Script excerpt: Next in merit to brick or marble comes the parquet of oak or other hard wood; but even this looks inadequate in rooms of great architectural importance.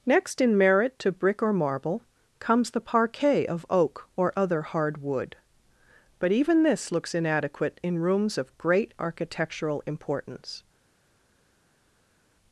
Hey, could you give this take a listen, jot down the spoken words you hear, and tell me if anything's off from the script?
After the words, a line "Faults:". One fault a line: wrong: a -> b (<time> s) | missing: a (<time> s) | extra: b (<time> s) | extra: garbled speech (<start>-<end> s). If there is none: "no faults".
Next in merit to brick or marble comes the parquet of oak or other hard wood; but even this looks inadequate in rooms of great architectural importance.
Faults:
no faults